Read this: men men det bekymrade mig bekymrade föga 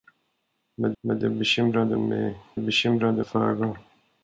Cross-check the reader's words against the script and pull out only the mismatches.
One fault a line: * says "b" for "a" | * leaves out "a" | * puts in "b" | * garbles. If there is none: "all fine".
all fine